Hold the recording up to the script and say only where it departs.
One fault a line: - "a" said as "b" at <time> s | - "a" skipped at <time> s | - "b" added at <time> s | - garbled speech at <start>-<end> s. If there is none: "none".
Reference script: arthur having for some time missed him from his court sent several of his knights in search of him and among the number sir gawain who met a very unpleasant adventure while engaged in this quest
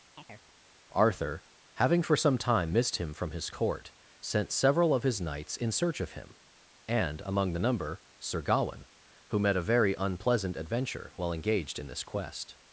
none